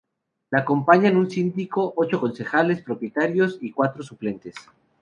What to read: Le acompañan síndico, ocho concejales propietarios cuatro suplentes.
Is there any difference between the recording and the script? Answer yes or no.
yes